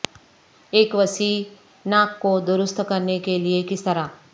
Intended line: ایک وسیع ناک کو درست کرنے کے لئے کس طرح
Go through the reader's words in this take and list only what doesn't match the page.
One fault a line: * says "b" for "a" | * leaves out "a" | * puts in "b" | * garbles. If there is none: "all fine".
all fine